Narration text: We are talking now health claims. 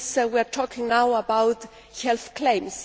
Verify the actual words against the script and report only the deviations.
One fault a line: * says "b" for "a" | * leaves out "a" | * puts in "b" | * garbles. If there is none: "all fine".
* puts in "about"